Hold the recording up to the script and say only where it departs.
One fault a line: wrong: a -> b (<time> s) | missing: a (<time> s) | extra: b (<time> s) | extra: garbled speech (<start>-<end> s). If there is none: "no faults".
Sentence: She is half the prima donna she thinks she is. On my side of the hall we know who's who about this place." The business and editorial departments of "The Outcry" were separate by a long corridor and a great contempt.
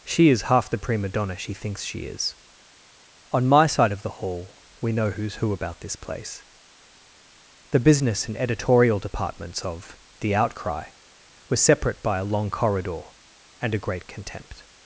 no faults